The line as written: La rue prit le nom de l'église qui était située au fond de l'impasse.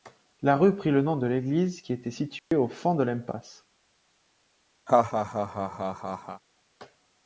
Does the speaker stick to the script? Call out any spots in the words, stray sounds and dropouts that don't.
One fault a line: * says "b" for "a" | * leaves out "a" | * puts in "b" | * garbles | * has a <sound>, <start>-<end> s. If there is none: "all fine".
* has a dropout, 2.4-2.5 s
* has a laugh, 4.9-6.4 s